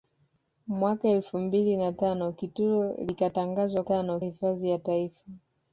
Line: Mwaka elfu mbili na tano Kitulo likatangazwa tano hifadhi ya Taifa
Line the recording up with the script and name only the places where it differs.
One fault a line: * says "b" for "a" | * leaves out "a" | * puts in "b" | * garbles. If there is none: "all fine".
all fine